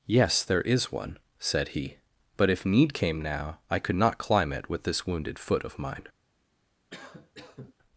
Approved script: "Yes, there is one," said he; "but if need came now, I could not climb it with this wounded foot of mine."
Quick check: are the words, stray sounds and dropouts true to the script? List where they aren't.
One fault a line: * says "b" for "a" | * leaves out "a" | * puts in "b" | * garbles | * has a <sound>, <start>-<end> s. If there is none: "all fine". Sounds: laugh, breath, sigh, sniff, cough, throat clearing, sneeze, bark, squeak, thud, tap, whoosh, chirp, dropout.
* has a cough, 6.9-7.7 s